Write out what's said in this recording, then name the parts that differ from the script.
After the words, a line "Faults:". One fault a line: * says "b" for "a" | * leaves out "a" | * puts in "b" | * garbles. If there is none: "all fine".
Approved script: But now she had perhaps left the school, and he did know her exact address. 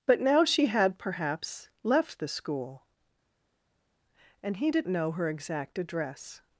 But now she had perhaps left the school, and he did know her exact address.
Faults:
all fine